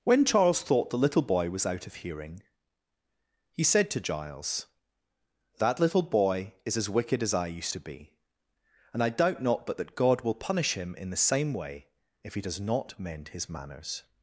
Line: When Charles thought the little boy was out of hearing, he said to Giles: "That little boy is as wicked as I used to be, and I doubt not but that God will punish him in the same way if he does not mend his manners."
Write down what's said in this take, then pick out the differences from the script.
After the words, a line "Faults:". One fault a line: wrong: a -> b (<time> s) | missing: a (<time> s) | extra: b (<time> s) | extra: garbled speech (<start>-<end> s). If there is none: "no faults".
When Charles thought the little boy was out of hearing, he said to Giles: "That little boy is as wicked as I used to be, and I doubt not but that God will punish him in the same way if he does not mend his manners."
Faults:
no faults